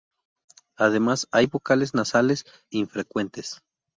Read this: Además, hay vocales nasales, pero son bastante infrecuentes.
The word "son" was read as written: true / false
false